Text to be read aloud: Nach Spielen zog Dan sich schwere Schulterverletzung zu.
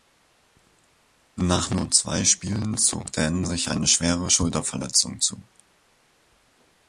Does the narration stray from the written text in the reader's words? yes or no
yes